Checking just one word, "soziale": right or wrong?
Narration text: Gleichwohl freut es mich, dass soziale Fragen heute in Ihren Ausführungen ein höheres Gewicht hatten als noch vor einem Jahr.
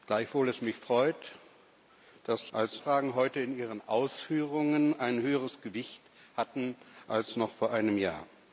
wrong